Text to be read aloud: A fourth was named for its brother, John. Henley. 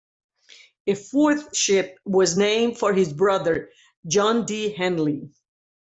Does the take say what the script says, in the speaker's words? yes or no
no